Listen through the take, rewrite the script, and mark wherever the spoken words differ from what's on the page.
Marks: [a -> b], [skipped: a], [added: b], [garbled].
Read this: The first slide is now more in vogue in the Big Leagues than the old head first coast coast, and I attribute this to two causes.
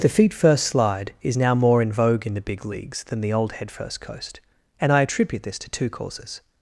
The [added: feet] first slide is now more in vogue in the Big Leagues than the old head first coast [skipped: coast,] and I attribute this to two causes.